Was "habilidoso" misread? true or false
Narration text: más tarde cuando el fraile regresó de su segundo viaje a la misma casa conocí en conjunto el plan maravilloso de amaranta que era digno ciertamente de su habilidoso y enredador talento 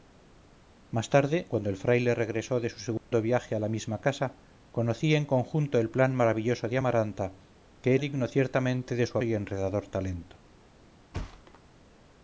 true